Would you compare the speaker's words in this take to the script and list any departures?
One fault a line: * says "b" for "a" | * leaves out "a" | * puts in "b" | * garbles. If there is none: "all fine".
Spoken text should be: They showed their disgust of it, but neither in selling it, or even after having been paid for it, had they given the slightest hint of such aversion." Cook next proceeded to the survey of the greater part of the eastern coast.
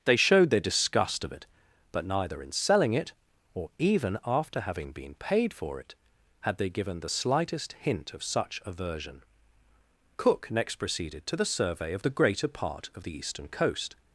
all fine